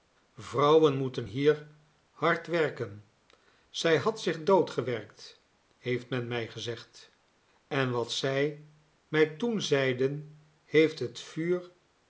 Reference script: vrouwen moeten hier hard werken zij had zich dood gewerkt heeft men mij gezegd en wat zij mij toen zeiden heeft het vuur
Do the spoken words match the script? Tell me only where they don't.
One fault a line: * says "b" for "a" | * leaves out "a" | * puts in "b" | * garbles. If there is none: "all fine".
all fine